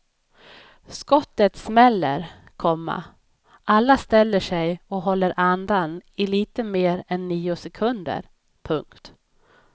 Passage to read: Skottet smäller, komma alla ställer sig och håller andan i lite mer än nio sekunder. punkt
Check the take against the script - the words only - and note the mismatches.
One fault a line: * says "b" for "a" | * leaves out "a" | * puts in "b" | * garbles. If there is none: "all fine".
all fine